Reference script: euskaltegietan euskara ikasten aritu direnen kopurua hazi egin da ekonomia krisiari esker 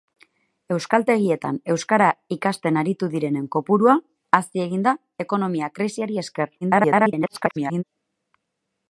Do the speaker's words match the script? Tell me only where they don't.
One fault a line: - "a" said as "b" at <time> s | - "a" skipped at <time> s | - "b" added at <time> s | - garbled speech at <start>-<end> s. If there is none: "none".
- garbled speech at 6.6-7.8 s